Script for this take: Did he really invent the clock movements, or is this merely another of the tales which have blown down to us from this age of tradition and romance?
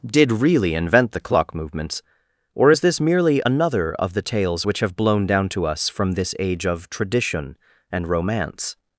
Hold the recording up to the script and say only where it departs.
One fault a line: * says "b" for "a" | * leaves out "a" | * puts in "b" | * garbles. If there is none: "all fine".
* leaves out "he"